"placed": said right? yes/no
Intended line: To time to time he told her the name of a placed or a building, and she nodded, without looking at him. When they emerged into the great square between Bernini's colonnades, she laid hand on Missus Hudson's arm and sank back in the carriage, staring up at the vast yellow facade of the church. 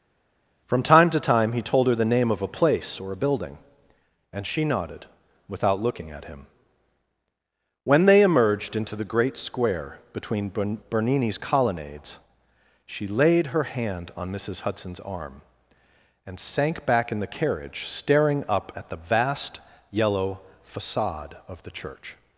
no